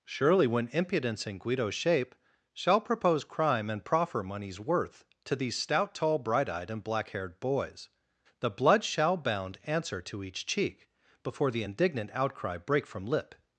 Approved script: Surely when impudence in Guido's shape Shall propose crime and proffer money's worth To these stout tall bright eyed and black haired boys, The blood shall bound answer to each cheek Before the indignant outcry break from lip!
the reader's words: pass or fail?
pass